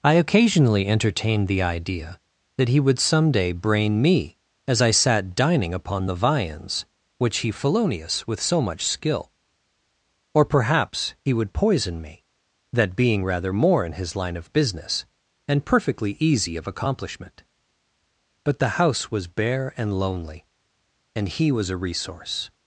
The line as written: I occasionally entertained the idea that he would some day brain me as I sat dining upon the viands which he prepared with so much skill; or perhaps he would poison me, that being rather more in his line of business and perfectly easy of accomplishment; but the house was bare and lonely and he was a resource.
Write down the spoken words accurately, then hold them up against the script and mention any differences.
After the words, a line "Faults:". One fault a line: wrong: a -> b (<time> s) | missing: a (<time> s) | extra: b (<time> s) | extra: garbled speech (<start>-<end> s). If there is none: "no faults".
I occasionally entertained the idea that he would some day brain me as I sat dining upon the viands which he felonious with so much skill; or perhaps he would poison me, that being rather more in his line of business and perfectly easy of accomplishment; but the house was bare and lonely and he was a resource.
Faults:
wrong: prepared -> felonious (7.5 s)